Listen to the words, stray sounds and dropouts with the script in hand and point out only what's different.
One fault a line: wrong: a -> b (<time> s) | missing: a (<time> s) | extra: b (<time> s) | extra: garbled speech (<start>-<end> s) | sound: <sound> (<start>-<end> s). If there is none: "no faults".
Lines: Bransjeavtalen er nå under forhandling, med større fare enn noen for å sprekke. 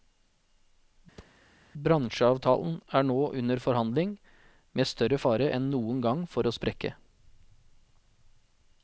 sound: thud (1.2-1.4 s)
extra: gang (6.0 s)